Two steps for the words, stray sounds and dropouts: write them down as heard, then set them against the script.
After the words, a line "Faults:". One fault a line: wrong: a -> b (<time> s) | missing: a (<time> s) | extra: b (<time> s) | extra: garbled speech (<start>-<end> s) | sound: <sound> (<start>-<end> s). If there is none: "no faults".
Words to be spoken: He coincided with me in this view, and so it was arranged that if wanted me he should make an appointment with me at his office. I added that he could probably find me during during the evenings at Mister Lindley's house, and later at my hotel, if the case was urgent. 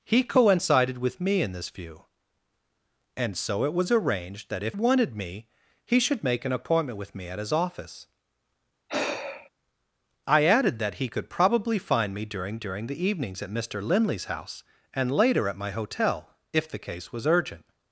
He coincided with me in this view, and so it was arranged that if wanted me he should make an appointment with me at his office. I added that he could probably find me during during the evenings at Mister Lindley's house, and later at my hotel, if the case was urgent.
Faults:
sound: sigh (8.9-9.5 s)